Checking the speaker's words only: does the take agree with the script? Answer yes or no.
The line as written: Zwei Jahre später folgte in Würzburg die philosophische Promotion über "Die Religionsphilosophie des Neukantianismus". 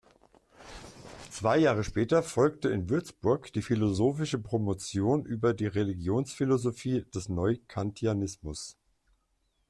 yes